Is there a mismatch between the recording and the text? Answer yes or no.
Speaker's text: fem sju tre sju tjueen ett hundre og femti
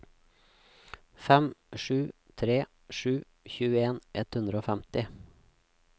no